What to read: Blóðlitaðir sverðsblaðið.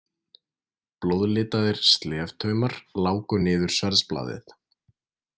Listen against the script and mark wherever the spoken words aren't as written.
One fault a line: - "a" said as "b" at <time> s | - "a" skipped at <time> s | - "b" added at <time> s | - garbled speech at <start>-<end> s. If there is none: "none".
- "sleftaumar láku niður" added at 1.9 s